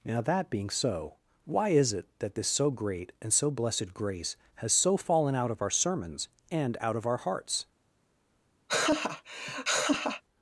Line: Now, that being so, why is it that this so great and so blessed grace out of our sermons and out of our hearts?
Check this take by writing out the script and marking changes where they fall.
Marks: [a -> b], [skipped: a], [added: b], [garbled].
Now, that being so, why is it that this so great and so blessed grace [added: has so fallen] out of our sermons and out of our hearts?